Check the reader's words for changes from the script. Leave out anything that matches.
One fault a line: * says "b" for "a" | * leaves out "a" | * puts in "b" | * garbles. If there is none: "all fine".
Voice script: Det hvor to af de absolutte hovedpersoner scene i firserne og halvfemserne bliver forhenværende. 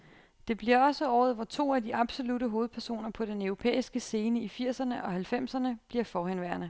* puts in "bliver også året"
* puts in "på den europæiske"